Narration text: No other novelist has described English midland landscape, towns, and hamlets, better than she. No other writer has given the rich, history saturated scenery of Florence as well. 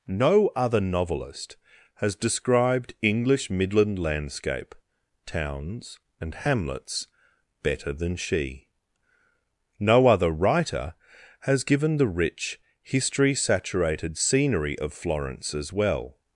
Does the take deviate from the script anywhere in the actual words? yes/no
no